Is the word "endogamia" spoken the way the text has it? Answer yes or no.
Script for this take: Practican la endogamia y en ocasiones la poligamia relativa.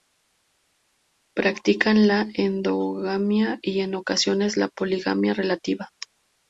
yes